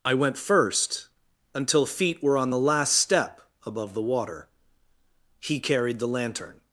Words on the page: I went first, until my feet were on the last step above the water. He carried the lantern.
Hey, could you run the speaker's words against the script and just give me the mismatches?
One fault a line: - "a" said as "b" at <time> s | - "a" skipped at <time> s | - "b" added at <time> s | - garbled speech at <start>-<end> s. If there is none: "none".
- "my" skipped at 1.9 s